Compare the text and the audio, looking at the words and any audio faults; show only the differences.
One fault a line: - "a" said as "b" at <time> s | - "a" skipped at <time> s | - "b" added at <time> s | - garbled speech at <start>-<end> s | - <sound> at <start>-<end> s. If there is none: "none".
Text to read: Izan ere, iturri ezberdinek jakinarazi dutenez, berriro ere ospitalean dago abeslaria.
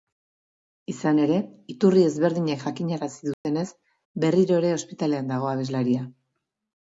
- dropout at 3.3-3.4 s